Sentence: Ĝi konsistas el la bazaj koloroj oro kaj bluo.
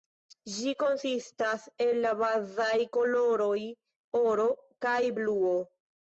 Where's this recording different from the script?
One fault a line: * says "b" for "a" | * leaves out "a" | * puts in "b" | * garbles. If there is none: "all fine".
all fine